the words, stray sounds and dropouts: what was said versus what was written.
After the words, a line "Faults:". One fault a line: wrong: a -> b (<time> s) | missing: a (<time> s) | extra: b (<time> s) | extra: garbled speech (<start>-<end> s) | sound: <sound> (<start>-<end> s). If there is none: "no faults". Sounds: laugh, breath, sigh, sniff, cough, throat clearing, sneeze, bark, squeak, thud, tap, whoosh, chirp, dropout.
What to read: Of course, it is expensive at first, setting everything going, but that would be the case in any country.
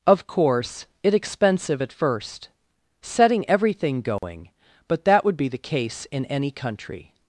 Of course, it expensive at first, setting everything going, but that would be the case in any country.
Faults:
missing: is (1.1 s)
sound: dropout (4.2-4.2 s)